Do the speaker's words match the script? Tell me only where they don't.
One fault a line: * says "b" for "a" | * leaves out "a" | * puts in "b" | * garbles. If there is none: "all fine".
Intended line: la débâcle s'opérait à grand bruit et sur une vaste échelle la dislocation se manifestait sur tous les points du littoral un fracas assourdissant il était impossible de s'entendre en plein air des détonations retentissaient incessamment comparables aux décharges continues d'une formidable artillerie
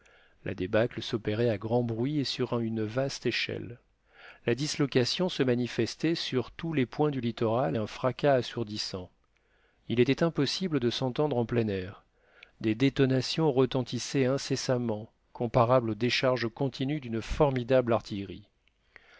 all fine